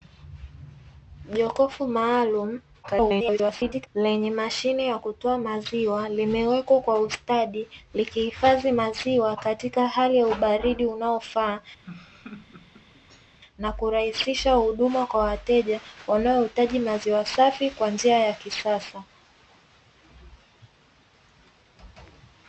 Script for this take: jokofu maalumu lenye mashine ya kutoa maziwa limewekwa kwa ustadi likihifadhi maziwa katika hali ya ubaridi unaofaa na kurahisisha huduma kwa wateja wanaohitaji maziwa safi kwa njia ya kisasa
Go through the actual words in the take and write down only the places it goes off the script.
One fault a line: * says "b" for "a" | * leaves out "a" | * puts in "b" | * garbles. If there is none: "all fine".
* garbles